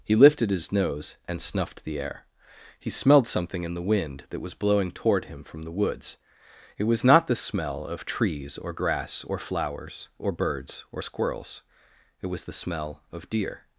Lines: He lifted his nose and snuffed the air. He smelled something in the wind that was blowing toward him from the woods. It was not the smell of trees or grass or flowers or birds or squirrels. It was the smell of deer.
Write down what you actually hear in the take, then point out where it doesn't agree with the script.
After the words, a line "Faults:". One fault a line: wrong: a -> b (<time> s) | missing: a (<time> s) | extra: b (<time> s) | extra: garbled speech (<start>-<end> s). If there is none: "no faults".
He lifted his nose and snuffed the air. He smelled something in the wind that was blowing toward him from the woods. It was not the smell of trees or grass or flowers or birds or squirrels. It was the smell of deer.
Faults:
no faults